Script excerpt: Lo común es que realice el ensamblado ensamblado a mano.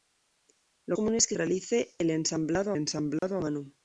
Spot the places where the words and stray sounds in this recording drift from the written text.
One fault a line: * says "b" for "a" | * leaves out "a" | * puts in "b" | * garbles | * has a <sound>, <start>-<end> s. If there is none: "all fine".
* has a dropout, 3.2-3.2 s